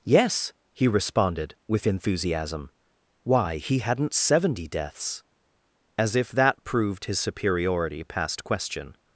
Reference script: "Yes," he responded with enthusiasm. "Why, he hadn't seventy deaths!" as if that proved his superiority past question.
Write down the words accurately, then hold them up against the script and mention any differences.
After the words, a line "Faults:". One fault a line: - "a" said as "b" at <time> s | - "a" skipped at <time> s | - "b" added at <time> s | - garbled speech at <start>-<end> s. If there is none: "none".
"Yes," he responded with enthusiasm. "Why, he hadn't seventy deaths!" as if that proved his superiority past question.
Faults:
none